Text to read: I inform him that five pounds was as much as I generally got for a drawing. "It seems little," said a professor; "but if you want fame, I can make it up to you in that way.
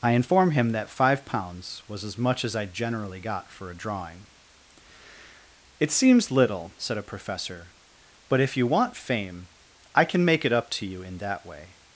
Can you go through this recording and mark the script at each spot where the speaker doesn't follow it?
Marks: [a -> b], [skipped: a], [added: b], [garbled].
I inform him that five pounds was as much as I generally got for a drawing. "It seems little," said a professor; "but if you want fame, I can make it up to you in that way.